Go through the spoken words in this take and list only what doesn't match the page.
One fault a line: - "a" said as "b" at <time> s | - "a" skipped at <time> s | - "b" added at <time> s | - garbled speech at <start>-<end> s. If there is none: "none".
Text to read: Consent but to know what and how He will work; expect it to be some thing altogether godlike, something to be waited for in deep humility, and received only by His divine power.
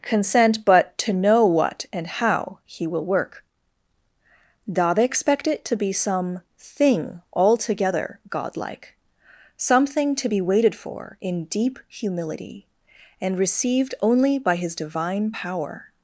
- "da they" added at 4.7 s